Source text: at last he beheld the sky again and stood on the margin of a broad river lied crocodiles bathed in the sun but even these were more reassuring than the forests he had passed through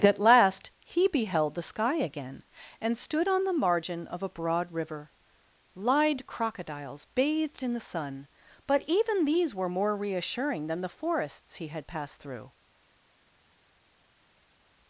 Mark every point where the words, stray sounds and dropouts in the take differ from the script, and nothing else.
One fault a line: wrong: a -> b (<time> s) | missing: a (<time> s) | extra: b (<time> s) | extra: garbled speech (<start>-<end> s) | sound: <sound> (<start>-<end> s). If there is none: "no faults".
no faults